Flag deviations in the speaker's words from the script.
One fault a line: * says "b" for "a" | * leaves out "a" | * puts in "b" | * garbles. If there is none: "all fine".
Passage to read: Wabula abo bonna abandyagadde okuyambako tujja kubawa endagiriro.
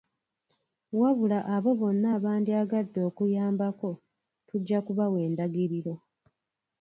all fine